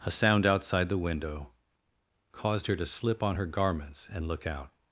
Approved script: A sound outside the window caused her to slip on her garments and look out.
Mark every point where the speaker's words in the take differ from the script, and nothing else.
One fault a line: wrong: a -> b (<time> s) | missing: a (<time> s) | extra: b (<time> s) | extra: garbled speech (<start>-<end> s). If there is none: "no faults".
no faults